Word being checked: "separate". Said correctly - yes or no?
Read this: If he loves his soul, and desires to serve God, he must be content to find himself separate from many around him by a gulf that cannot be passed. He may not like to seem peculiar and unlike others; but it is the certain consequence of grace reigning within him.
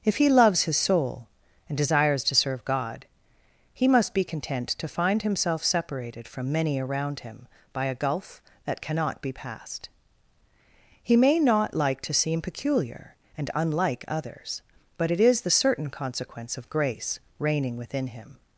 no